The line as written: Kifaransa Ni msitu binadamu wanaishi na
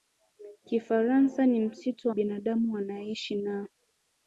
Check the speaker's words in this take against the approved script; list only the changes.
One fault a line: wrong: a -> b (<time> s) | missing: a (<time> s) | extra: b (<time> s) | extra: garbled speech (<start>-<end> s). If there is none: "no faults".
no faults